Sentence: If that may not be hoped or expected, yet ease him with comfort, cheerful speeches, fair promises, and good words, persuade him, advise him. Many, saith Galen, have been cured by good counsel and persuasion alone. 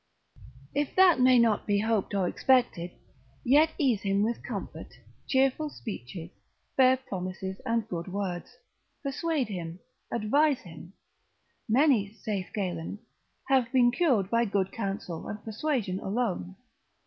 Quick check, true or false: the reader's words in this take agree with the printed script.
true